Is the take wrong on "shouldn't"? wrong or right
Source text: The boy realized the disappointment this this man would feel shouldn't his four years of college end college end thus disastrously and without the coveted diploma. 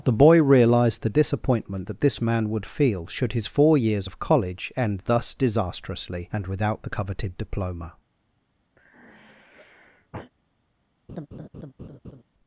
wrong